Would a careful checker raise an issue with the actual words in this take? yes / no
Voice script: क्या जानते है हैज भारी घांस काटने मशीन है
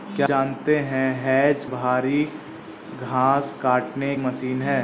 no